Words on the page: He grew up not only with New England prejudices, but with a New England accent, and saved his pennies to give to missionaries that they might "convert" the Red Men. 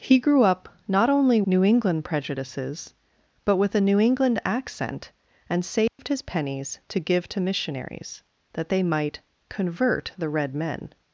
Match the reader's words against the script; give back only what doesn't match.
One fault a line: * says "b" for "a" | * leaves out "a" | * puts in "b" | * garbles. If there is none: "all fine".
* leaves out "with"